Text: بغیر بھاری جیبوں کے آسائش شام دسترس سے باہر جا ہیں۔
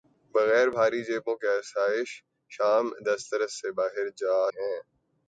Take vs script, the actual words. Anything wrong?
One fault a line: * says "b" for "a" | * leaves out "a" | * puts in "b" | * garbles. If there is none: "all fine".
all fine